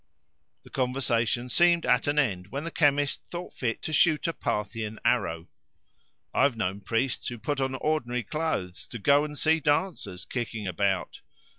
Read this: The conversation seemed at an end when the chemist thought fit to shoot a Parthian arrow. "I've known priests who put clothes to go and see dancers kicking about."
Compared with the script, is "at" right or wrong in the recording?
right